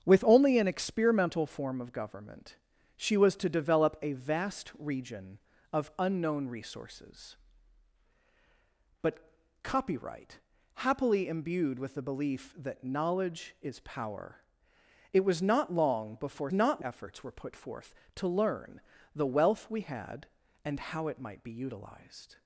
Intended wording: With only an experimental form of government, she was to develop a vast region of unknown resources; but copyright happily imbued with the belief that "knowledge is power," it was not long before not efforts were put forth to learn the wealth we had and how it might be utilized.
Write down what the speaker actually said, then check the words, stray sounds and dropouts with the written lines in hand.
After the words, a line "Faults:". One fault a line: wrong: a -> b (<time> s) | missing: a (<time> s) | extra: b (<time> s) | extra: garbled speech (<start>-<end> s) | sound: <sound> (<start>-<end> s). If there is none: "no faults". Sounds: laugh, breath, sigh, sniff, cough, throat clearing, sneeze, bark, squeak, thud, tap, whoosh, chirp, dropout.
With only an experimental form of government, she was to develop a vast region of unknown resources; but copyright happily imbued with the belief that "knowledge is power," it was not long before not efforts were put forth to learn the wealth we had and how it might be utilized.
Faults:
no faults